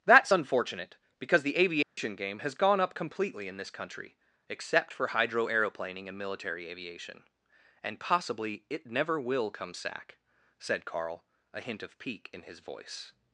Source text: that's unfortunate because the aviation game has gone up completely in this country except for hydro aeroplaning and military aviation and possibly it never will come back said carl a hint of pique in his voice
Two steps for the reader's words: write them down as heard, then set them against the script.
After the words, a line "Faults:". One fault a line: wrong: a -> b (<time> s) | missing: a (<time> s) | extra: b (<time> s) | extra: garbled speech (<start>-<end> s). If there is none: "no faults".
that's unfortunate because the aviation game has gone up completely in this country except for hydro aeroplaning and military aviation and possibly it never will come sack said carl a hint of pique in his voice
Faults:
wrong: back -> sack (9.7 s)